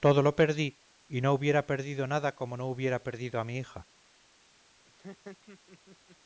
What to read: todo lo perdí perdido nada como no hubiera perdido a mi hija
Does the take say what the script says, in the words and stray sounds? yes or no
no